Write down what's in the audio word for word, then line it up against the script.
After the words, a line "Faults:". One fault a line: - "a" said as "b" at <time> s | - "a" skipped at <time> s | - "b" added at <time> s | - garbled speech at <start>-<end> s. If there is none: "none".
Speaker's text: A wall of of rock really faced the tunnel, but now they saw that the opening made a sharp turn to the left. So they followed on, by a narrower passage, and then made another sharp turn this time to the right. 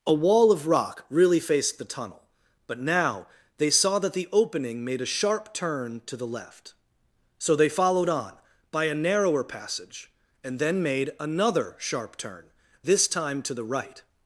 A wall of rock really faced the tunnel, but now they saw that the opening made a sharp turn to the left. So they followed on, by a narrower passage, and then made another sharp turn this time to the right.
Faults:
- "of" skipped at 0.7 s